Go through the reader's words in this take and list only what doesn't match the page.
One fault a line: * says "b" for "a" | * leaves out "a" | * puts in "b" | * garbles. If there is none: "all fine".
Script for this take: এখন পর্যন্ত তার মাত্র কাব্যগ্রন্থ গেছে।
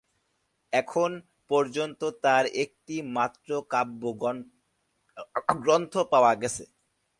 * puts in "একটি"
* puts in "পাওয়া"